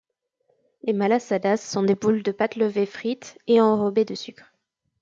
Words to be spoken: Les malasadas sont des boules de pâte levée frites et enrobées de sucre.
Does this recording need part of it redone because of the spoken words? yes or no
no